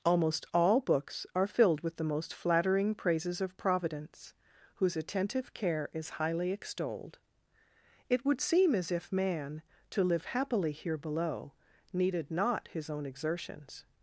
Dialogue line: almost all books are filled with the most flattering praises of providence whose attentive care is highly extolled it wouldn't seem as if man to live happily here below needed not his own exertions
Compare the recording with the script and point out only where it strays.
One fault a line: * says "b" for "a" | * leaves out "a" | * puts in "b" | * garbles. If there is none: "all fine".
* says "would" for "wouldn't"